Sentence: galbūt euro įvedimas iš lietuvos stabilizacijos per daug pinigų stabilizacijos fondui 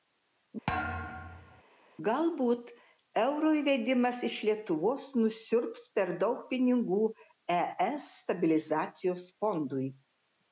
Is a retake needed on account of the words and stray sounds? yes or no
yes